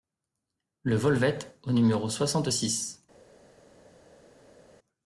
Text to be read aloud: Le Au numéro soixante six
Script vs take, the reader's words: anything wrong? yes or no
yes